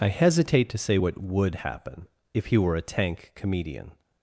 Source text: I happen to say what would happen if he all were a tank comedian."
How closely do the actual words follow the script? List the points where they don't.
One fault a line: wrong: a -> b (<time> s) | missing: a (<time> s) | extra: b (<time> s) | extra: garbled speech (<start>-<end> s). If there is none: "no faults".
wrong: happen -> hesitate (0.1 s)
missing: all (2.6 s)